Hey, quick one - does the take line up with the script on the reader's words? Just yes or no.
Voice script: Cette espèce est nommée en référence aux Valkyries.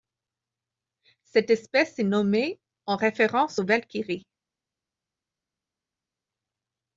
yes